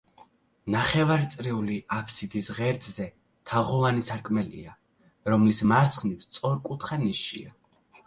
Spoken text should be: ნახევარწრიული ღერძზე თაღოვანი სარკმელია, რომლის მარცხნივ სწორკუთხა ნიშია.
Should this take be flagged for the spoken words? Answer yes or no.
yes